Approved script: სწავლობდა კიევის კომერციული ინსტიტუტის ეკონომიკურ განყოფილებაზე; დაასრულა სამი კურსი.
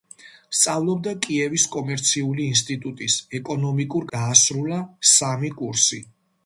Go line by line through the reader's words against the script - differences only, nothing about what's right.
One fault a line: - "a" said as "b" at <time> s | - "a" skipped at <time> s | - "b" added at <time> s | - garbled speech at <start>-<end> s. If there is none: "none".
- "განყოფილებაზე" skipped at 4.1 s